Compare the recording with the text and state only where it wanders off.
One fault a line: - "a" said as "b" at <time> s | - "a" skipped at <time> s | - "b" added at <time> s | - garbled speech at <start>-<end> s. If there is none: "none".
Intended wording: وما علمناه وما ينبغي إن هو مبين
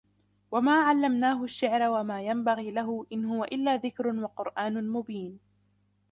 - "الشعر" added at 1.4 s
- "له" added at 2.7 s
- "إلا ذكر وقرآن" added at 3.4 s